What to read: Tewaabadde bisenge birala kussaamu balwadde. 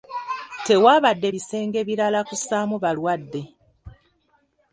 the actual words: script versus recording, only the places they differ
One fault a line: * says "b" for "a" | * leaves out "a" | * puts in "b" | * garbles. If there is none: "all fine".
all fine